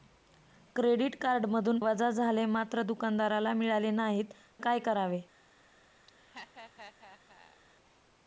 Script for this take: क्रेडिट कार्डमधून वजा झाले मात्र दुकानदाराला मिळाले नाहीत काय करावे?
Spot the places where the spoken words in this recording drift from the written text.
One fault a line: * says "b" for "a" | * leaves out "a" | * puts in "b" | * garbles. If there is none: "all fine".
all fine